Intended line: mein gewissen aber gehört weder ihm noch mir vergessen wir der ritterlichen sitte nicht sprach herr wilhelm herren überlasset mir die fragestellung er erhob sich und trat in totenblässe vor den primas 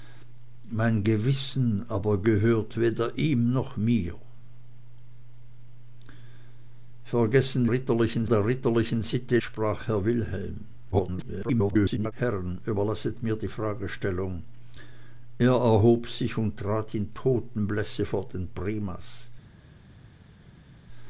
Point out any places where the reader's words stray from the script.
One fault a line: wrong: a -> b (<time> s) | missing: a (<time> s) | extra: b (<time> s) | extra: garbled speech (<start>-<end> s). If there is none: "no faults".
wrong: wir -> ritterlichen (7.7 s)
missing: nicht (9.4 s)
extra: garbled speech (10.9-12.1 s)